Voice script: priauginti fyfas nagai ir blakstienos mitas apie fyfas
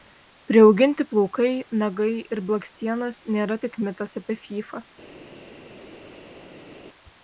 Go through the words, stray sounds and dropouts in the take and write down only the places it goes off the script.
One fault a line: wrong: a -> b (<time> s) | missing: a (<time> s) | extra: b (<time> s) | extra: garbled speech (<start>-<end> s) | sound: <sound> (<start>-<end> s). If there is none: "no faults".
wrong: fyfas -> plaukai (1.1 s)
extra: nėra tik (3.4 s)